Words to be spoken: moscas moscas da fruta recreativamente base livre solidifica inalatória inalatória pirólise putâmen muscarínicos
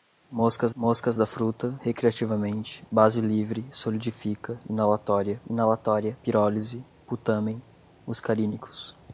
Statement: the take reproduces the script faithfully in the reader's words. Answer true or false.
true